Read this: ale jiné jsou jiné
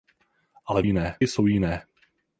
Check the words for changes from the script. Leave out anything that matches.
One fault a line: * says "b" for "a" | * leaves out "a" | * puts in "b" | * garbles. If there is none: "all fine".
all fine